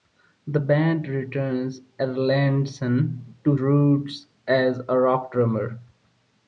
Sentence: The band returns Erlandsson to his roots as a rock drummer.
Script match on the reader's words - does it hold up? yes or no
no